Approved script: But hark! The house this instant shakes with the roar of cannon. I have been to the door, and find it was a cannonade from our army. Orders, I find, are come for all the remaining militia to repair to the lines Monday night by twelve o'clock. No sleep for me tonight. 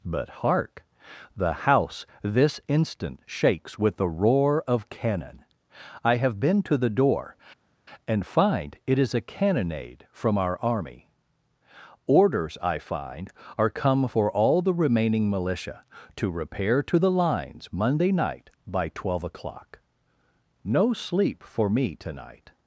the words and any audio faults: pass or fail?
fail